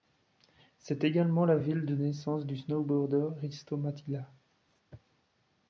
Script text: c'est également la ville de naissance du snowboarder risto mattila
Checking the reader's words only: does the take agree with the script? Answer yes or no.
yes